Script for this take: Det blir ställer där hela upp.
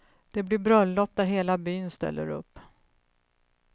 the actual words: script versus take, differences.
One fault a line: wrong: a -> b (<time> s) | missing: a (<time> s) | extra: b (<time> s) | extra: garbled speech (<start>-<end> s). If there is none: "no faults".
wrong: ställer -> bröllop (0.6 s)
extra: byn ställer (1.6 s)